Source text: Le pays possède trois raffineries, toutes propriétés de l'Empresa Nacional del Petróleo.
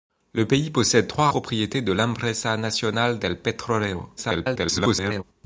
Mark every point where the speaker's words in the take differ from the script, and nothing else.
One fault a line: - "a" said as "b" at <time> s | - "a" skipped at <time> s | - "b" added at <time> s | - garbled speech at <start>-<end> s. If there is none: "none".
- "raffineries toutes" skipped at 1.3 s
- garbled speech at 4.2-5.2 s